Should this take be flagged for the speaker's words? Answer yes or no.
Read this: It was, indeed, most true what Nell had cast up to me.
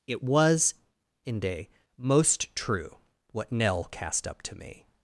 yes